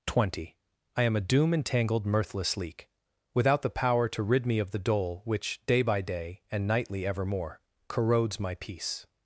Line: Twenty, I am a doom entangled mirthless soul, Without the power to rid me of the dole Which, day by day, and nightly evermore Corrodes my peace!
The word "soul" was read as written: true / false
false